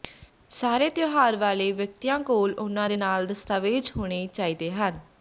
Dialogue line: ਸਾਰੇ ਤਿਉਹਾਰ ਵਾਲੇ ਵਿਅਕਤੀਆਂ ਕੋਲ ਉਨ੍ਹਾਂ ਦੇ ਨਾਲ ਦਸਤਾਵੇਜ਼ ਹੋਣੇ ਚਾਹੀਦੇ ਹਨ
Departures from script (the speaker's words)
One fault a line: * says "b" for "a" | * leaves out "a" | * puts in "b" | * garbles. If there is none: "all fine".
all fine